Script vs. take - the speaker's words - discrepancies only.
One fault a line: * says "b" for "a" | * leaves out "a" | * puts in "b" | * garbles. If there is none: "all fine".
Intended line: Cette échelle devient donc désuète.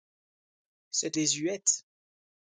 * leaves out "échelle devient donc"